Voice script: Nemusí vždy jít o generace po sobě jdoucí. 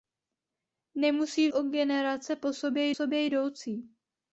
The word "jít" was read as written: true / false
false